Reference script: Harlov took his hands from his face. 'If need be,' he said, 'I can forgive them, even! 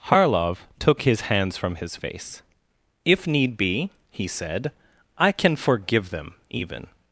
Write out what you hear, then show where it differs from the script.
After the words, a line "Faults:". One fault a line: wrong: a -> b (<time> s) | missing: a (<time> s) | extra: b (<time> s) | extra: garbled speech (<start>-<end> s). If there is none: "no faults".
Harlov took his hands from his face. 'If need be,' he said, 'I can forgive them, even!
Faults:
no faults